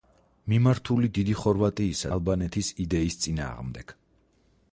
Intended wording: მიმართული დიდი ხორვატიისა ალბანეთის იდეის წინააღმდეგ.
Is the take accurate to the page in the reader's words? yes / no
yes